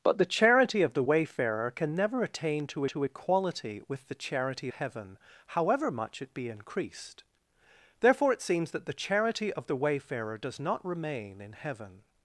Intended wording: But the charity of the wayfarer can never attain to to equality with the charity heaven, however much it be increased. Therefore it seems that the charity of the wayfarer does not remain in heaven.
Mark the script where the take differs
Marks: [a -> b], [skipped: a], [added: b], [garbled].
But the charity of the wayfarer can never attain to to equality with the charity heaven, however much it be increased. Therefore it seems that the charity of the wayfarer does not remain in heaven.